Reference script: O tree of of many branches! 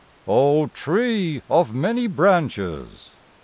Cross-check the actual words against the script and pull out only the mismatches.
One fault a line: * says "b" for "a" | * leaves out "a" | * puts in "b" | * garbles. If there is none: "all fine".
* leaves out "of"